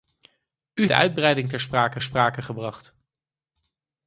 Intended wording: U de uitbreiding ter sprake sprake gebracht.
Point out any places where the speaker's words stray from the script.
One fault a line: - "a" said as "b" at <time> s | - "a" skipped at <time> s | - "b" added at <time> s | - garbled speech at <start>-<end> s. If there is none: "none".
none